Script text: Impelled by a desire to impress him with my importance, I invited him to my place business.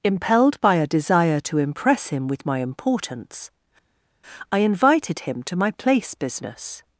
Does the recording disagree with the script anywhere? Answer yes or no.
no